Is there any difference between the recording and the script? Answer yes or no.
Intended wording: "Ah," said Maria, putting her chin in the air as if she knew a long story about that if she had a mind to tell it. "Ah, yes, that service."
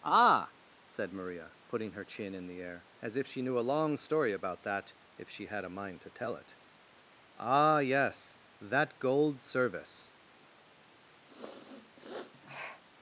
yes